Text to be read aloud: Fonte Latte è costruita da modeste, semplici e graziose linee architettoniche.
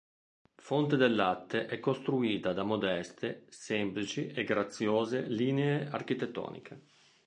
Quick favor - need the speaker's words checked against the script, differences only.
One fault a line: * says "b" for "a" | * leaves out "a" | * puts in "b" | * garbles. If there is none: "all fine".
* puts in "del"